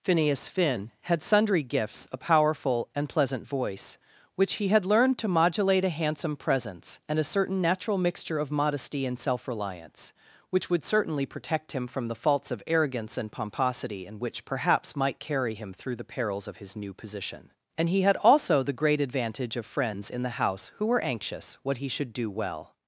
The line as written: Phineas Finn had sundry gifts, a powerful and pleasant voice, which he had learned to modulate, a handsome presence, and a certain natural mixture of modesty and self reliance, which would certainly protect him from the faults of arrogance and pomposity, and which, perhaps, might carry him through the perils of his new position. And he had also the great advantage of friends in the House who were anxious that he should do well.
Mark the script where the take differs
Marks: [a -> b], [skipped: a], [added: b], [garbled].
Phineas Finn had sundry gifts, a powerful and pleasant voice, which he had learned to modulate, a handsome presence, and a certain natural mixture of modesty and self reliance, which would certainly protect him from the faults of arrogance and pomposity, and which, perhaps, might carry him through the perils of his new position. And he had also the great advantage of friends in the House who were anxious [that -> what] he should do well.